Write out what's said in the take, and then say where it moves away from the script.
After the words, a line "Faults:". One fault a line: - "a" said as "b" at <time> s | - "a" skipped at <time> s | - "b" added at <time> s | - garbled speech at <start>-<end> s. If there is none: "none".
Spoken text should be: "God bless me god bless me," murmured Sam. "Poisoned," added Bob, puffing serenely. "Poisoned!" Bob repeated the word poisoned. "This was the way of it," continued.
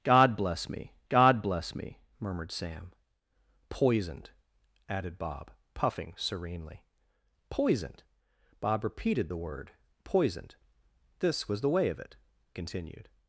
"God bless me god bless me," murmured Sam. "Poisoned," added Bob, puffing serenely. "Poisoned!" Bob repeated the word poisoned. "This was the way of it," continued.
Faults:
none